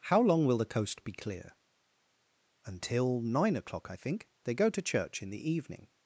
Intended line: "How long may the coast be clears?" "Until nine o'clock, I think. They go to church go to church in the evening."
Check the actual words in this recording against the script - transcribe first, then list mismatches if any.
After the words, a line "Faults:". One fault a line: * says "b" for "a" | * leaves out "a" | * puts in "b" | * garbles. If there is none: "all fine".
"How long will the coast be clear?" "Until nine o'clock, I think. They go to church in the evening."
Faults:
* says "will" for "may"
* says "clear" for "clears"
* leaves out "go to church"